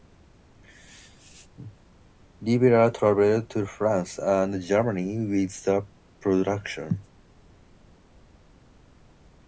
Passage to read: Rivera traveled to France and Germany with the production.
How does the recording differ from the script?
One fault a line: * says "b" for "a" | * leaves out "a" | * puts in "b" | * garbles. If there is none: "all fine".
all fine